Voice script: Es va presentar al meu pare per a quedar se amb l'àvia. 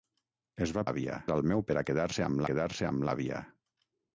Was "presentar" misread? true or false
true